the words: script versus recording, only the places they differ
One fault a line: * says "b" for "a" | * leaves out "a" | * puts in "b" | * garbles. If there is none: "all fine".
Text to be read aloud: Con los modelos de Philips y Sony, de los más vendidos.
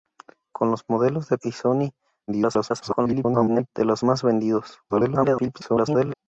* leaves out "Philips"
* garbles
* garbles